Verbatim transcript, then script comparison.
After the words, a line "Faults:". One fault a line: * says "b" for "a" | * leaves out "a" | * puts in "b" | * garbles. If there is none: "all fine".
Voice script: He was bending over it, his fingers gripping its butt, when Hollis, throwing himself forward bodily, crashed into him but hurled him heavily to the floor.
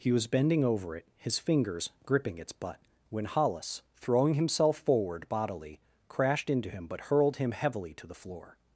He was bending over it, his fingers gripping its butt, when Hollis, throwing himself forward bodily, crashed into him but hurled him heavily to the floor.
Faults:
all fine